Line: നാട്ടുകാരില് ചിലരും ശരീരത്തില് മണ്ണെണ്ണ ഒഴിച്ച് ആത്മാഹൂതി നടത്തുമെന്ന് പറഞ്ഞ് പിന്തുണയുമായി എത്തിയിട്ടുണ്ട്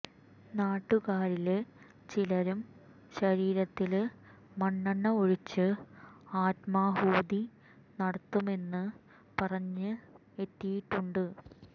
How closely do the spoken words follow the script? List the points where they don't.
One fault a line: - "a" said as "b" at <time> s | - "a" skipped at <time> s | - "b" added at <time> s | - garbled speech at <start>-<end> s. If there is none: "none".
- "പിന്തുണയുമായി" skipped at 9.9 s